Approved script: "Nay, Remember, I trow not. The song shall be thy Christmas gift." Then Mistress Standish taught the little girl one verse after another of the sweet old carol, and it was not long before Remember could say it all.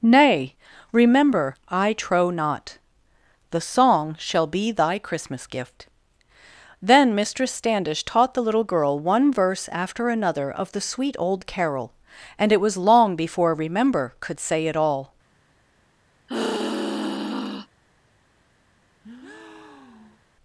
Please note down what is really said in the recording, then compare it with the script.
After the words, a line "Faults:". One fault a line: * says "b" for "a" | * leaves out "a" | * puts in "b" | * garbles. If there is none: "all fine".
"Nay, Remember, I trow not. The song shall be thy Christmas gift." Then Mistress Standish taught the little girl one verse after another of the sweet old carol, and it was long before Remember could say it all.
Faults:
* leaves out "not"